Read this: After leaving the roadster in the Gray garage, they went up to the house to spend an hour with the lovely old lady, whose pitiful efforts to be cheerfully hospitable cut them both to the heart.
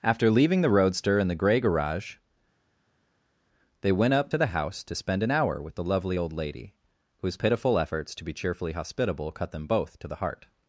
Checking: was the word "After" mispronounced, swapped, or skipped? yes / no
no